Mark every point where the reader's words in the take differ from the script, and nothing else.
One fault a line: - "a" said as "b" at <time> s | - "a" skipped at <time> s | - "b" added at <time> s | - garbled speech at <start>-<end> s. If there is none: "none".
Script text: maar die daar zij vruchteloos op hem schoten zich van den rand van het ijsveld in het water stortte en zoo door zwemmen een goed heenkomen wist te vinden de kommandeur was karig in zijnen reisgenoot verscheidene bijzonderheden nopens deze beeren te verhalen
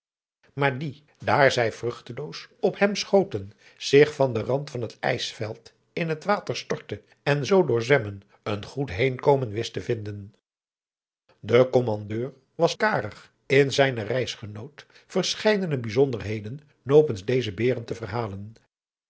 none